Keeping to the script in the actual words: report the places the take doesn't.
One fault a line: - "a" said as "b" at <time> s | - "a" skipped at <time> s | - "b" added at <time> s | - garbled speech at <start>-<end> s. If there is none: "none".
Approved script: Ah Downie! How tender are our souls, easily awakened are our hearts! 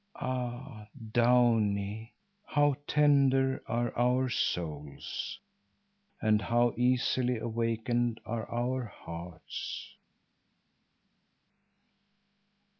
- "and how" added at 6.2 s